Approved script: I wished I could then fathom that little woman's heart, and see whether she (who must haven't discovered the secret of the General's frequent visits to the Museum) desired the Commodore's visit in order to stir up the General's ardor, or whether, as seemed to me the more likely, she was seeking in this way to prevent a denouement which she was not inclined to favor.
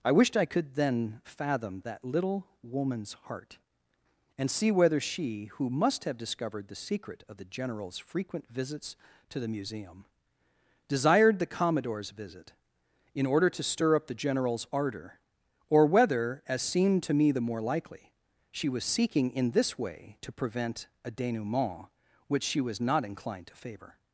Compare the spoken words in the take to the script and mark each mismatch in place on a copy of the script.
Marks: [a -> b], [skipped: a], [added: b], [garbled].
I wished I could then fathom that little woman's heart, and see whether she (who must [haven't -> have] discovered the secret of the General's frequent visits to the Museum) desired the Commodore's visit in order to stir up the General's ardor, or whether, as seemed to me the more likely, she was seeking in this way to prevent a denouement which she was not inclined to favor.